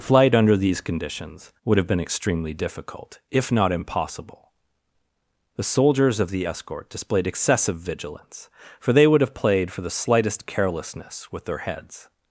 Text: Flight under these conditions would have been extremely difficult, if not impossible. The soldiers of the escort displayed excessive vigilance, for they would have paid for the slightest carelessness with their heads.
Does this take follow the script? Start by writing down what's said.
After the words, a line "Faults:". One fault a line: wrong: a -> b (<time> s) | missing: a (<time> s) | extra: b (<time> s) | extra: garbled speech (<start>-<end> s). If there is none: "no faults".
Flight under these conditions would have been extremely difficult, if not impossible. The soldiers of the escort displayed excessive vigilance, for they would have played for the slightest carelessness with their heads.
Faults:
wrong: paid -> played (9.3 s)